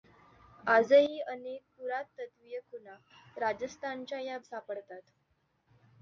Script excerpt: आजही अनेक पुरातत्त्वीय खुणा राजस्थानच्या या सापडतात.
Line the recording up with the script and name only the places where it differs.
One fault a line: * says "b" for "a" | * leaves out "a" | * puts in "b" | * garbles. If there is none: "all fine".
all fine